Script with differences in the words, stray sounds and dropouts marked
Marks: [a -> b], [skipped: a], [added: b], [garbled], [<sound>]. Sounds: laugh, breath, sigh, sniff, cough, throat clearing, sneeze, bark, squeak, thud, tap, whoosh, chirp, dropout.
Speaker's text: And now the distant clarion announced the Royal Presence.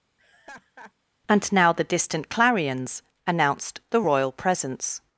[laugh] And now the distant [clarion -> clarions] announced the Royal Presence.